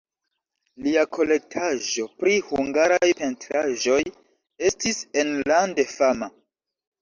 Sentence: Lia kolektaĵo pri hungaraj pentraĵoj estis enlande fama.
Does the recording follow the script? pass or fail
pass